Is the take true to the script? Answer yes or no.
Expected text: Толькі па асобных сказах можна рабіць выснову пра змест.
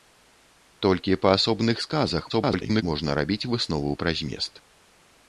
no